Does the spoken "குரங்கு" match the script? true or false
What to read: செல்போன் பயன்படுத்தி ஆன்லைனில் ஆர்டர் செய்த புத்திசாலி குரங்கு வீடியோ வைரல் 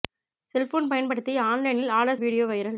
false